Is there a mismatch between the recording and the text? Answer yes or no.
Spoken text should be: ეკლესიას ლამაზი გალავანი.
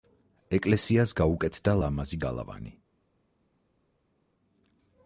yes